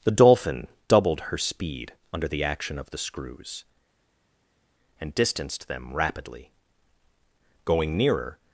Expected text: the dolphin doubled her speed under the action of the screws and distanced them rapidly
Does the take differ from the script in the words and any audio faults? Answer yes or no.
yes